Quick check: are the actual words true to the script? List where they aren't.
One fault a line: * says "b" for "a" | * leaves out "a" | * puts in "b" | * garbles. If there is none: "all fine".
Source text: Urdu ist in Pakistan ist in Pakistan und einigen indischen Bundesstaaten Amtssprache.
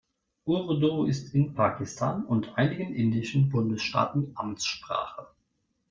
* leaves out "ist in Pakistan"